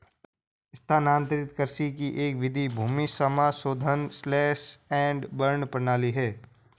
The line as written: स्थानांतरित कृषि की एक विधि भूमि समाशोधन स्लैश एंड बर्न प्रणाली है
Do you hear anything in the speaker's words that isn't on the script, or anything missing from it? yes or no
no